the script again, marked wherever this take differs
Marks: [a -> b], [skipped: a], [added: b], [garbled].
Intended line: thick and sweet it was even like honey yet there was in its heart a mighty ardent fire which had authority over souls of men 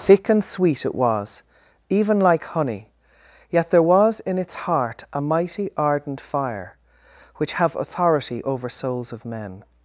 thick and sweet it was even like honey yet there was in its heart a mighty ardent fire which [had -> have] authority over souls of men